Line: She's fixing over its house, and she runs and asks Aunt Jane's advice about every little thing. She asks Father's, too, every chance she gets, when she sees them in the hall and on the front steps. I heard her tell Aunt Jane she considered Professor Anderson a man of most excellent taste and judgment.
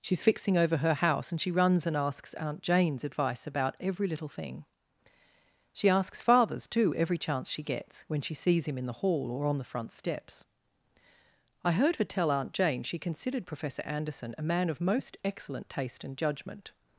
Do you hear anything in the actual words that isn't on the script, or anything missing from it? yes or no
yes